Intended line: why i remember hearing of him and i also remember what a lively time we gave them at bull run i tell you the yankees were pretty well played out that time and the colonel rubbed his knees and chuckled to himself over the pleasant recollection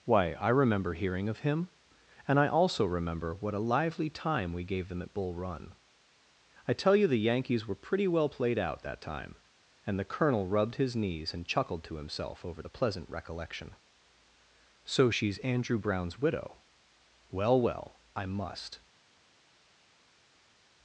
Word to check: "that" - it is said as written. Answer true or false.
true